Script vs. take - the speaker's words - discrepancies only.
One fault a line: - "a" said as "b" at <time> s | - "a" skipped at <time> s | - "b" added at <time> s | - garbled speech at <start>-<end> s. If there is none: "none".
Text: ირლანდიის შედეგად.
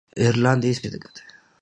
none